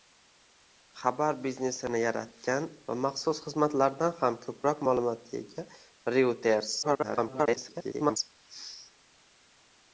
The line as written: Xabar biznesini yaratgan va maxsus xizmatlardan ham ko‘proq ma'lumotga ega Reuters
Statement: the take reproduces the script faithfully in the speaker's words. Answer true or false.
false